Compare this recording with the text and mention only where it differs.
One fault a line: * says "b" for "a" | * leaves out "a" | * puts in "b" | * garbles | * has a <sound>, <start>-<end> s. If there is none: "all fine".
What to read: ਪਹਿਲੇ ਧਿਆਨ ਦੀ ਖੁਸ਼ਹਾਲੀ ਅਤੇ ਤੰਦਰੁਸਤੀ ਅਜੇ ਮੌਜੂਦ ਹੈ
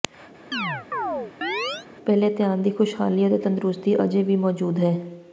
* has a chirp, 0.5-1.9 s
* puts in "ਵੀ"